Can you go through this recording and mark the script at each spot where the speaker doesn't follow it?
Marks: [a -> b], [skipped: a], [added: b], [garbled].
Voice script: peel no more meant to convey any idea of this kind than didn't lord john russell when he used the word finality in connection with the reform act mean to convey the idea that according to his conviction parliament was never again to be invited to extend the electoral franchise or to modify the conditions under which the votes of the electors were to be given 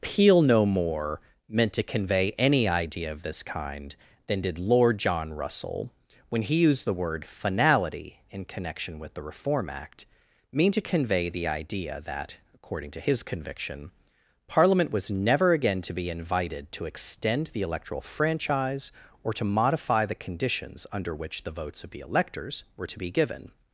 peel no more meant to convey any idea of this kind than [didn't -> did] lord john russell when he used the word finality in connection with the reform act mean to convey the idea that according to his conviction parliament was never again to be invited to extend the electoral franchise or to modify the conditions under which the votes of the electors were to be given